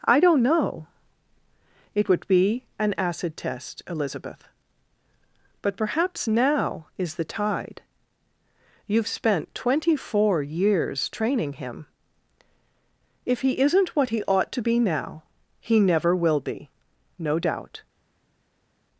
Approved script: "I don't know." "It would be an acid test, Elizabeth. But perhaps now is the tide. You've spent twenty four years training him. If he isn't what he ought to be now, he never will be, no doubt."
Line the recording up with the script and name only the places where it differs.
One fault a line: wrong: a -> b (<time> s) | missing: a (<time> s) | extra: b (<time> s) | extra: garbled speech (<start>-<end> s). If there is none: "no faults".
no faults